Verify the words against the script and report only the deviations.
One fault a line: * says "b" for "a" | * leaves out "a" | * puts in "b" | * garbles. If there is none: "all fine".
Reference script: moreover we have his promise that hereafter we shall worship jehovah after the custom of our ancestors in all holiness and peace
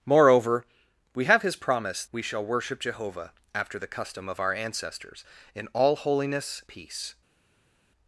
* leaves out "that hereafter"
* leaves out "and"